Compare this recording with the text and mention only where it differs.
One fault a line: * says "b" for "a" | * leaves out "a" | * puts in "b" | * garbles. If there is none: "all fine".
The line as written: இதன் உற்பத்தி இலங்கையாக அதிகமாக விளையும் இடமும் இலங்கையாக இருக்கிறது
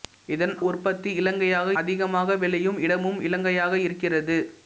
all fine